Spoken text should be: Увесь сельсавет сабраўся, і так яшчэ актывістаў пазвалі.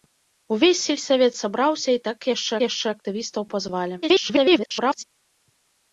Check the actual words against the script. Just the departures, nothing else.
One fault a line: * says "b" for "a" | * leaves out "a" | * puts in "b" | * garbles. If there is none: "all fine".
* puts in "яшчэ"
* garbles